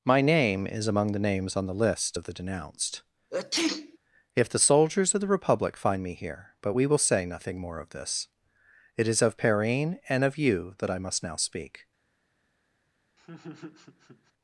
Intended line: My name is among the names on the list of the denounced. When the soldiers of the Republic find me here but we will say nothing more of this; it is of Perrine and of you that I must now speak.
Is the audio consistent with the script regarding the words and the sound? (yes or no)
no